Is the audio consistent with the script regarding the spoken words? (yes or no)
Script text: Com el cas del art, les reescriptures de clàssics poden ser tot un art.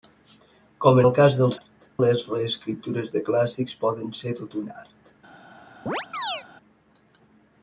yes